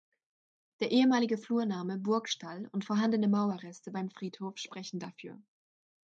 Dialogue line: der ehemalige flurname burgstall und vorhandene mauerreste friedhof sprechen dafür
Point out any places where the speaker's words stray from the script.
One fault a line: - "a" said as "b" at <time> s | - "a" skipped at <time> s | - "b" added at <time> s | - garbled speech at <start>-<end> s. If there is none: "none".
- "beim" added at 3.9 s